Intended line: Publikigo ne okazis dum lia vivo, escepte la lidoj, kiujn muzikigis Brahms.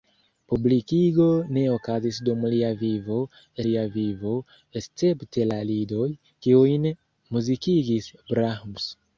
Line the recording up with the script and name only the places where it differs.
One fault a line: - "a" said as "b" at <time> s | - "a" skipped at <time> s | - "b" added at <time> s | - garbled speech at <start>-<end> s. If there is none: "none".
- "lia vivo" added at 3.7 s